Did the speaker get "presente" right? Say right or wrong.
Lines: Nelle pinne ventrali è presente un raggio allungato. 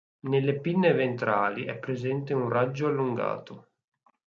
right